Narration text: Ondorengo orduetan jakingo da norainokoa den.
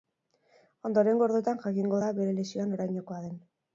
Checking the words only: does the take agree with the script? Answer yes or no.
no